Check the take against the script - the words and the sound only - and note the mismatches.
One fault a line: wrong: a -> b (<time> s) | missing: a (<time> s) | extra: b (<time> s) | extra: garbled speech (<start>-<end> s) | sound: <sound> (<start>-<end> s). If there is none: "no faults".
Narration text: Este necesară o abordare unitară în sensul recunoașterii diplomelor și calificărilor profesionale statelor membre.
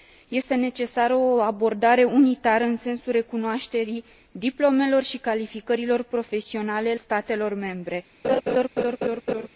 sound: laugh (8.2-9.5 s)